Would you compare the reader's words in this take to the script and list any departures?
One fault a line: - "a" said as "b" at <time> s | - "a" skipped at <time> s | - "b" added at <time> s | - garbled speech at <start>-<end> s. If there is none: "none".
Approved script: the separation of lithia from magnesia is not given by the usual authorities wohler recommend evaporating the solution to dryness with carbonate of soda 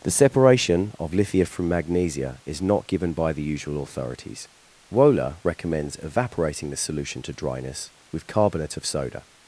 - "recommend" said as "recommends" at 5.4 s